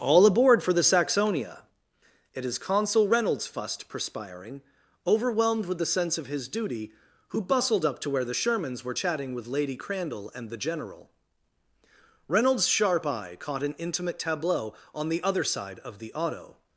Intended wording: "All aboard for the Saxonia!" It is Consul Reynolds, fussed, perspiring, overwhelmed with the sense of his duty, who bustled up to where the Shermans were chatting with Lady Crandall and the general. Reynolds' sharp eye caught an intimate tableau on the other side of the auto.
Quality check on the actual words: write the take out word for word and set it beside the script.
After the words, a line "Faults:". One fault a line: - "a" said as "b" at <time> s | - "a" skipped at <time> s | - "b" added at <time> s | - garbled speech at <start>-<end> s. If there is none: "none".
"All aboard for the Saxonia!" It is Consul Reynolds, fussed, perspiring, overwhelmed with the sense of his duty, who bustled up to where the Shermans were chatting with Lady Crandall and the general. Reynolds' sharp eye caught an intimate tableau on the other side of the auto.
Faults:
none